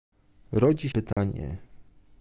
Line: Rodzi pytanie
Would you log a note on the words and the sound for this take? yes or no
yes